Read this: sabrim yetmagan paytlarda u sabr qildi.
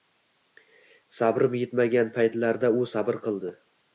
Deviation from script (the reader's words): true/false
false